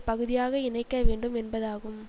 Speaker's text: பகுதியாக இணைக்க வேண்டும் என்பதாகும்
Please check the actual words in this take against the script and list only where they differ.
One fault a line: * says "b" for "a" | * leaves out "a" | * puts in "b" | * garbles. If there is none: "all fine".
all fine